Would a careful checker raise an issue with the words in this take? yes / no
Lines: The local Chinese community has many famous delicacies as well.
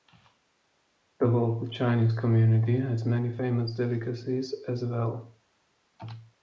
no